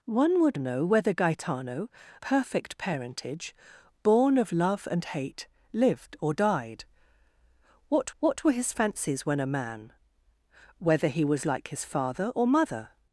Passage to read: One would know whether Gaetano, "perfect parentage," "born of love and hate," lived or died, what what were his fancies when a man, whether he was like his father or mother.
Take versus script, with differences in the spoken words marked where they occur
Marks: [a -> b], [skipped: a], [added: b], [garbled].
One would know whether Gaetano, "perfect parentage," "born of love and hate," lived or died, what what were his fancies when a man, whether he was like his father or mother.